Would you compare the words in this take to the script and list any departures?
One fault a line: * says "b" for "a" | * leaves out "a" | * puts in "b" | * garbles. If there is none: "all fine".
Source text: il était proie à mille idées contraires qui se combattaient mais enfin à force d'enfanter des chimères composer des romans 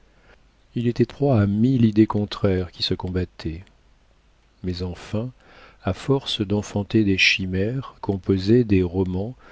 all fine